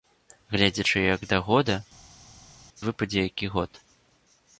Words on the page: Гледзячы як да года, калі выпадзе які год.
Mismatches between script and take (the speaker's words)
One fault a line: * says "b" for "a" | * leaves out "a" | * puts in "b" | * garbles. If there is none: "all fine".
* leaves out "калі"